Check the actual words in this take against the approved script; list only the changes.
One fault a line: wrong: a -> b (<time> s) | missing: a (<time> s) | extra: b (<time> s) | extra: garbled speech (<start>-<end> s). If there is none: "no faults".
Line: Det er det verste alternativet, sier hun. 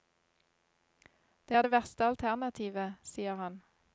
wrong: hun -> han (3.4 s)